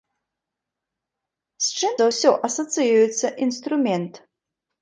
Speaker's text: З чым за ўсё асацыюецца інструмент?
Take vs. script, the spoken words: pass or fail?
pass